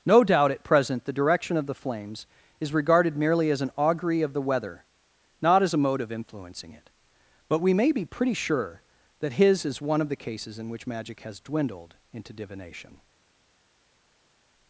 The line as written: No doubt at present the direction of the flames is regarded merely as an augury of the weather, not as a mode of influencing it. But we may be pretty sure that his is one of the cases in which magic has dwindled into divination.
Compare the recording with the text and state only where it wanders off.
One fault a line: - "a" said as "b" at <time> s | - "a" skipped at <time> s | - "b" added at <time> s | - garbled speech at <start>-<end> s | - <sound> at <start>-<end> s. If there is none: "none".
none